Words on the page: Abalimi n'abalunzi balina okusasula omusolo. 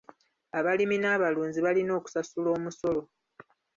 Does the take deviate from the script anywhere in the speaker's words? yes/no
no